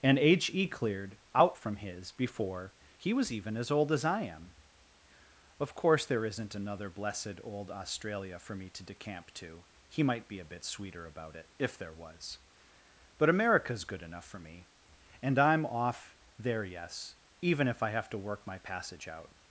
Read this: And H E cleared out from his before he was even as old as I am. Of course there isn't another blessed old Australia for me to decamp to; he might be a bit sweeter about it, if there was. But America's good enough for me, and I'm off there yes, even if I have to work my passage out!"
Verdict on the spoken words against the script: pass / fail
pass